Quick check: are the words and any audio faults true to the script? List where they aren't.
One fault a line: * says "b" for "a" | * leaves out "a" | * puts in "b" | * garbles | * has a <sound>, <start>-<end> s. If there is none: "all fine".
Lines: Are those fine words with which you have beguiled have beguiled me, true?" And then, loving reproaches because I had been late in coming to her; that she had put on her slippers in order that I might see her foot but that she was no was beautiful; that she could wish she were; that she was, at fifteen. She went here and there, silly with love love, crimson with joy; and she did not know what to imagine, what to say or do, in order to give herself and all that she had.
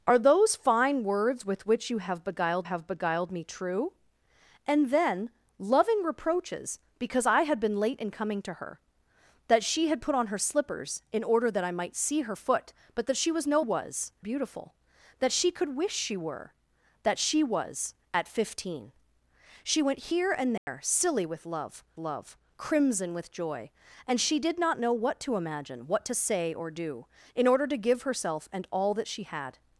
* has a dropout, 20.6-20.7 s